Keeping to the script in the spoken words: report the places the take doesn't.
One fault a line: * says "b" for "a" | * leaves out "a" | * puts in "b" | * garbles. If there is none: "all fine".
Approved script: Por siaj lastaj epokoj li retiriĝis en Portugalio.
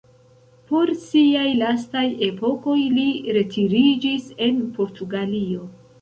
all fine